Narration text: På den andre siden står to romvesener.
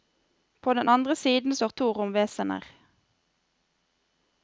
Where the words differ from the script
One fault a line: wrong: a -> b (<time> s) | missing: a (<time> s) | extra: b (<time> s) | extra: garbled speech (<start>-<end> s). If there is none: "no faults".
no faults